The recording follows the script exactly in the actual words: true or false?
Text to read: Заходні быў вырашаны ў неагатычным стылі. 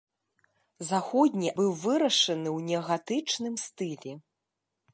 true